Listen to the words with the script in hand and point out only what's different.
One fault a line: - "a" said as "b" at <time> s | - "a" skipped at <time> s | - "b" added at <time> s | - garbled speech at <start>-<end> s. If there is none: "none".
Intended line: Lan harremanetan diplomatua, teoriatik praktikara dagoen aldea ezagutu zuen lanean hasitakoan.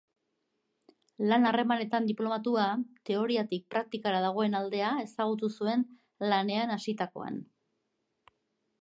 none